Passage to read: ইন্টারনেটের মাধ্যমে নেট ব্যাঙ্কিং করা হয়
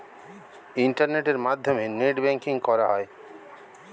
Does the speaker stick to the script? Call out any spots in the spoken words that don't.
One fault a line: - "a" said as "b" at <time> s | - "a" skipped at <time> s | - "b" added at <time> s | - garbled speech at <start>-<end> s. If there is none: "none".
none